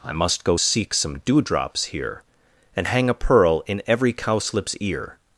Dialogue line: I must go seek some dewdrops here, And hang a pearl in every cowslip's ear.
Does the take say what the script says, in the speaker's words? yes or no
yes